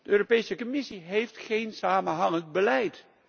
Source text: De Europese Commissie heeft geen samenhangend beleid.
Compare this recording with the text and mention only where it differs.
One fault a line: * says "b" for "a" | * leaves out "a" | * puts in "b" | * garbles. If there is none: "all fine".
all fine